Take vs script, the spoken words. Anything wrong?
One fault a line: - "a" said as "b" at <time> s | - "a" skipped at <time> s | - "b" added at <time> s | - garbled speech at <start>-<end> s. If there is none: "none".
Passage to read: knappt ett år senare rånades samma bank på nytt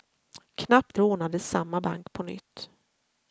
- "ett år senare" skipped at 1.0 s